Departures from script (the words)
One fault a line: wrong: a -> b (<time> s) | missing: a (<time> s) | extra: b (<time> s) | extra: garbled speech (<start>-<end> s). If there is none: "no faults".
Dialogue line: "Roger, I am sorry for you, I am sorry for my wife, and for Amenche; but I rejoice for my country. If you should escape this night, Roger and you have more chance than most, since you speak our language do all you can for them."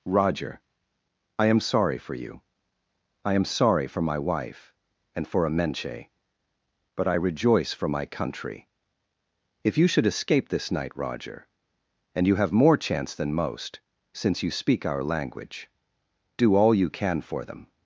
no faults